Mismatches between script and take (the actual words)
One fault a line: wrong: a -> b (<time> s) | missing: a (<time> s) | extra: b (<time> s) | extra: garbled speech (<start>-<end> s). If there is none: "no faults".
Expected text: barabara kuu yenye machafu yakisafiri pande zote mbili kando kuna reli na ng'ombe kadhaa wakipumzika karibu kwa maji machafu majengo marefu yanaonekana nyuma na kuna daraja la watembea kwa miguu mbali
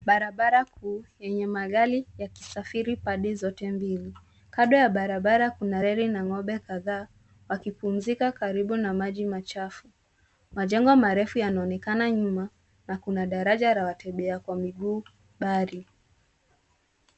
wrong: machafu -> magari (1.5 s)
extra: ya barabara (4.8 s)
wrong: kwa -> na (8.8 s)